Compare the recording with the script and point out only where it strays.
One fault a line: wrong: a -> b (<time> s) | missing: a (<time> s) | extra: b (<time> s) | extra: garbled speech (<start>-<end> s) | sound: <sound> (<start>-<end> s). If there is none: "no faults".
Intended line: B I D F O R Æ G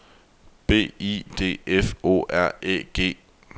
no faults